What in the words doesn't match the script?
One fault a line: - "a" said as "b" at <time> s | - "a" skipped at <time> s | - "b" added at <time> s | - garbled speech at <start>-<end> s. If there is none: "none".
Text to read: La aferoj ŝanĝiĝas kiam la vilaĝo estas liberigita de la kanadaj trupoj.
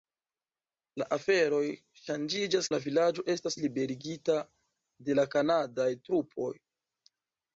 - "kiam" skipped at 2.7 s